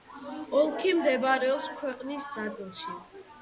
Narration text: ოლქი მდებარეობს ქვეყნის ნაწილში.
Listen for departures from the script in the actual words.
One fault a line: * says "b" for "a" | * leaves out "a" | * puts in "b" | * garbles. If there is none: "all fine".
all fine